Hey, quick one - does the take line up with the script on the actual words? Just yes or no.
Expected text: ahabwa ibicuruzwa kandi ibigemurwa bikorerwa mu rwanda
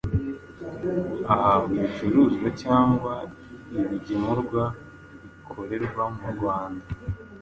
no